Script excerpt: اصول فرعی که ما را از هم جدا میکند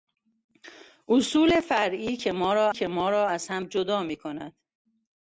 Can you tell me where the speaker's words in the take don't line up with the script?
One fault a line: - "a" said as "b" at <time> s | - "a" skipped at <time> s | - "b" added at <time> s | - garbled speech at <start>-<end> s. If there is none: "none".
- "که ما را" added at 2.7 s